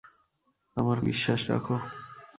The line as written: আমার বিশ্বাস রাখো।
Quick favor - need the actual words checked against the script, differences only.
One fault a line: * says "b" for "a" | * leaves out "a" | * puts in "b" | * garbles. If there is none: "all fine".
all fine